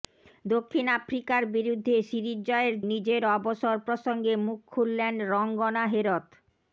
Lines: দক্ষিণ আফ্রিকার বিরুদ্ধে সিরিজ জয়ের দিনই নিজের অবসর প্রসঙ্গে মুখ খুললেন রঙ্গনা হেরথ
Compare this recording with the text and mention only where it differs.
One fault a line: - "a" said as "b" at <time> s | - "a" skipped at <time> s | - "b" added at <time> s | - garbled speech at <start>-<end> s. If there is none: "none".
- "দিনই" skipped at 2.8 s